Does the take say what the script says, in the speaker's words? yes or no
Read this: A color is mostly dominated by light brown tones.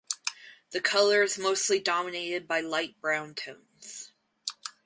no